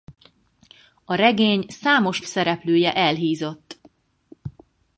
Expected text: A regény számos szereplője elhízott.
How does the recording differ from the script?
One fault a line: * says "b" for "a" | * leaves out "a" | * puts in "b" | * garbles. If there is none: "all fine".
all fine